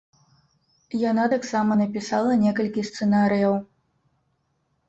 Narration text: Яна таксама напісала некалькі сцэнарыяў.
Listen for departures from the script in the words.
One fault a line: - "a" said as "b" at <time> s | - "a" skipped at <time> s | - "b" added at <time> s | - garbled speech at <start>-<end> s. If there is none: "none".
none